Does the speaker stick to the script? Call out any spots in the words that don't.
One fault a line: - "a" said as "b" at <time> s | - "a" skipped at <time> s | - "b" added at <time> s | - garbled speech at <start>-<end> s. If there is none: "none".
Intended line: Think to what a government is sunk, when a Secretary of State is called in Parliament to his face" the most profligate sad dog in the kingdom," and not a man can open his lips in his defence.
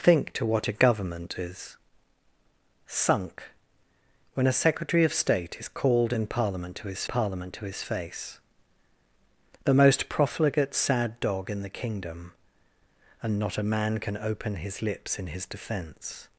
- "Parliament to his" added at 7.0 s